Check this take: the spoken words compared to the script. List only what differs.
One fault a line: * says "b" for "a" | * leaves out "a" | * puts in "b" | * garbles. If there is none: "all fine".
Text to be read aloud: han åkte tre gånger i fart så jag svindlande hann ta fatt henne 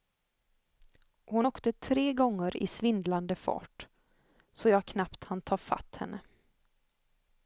* says "hon" for "han"
* puts in "svindlande"
* says "knappt" for "svindlande"